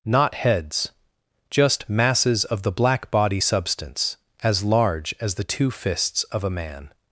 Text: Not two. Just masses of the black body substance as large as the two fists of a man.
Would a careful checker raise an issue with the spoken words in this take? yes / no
yes